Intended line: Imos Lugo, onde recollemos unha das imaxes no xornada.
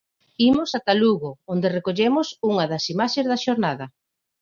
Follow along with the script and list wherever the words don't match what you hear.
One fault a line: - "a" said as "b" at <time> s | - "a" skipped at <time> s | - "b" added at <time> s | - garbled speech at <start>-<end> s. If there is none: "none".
- "ata" added at 0.8 s
- "no" said as "da" at 3.3 s